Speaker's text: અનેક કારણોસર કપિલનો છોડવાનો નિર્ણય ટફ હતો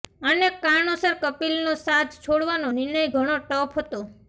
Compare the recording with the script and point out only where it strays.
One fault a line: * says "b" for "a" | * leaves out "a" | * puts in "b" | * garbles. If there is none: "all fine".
* puts in "સાથ"
* puts in "ઘણો"